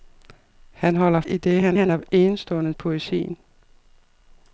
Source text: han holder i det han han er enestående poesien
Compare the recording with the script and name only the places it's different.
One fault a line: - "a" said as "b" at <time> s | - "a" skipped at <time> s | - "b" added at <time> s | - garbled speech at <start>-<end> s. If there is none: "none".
none